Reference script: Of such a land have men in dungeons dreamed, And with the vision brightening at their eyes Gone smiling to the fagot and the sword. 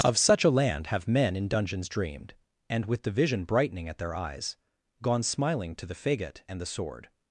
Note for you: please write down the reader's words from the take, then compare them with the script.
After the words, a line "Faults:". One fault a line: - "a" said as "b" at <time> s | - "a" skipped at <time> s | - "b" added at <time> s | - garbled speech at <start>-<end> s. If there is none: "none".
Of such a land have men in dungeons dreamed, And with the vision brightening at their eyes Gone smiling to the fagot and the sword.
Faults:
none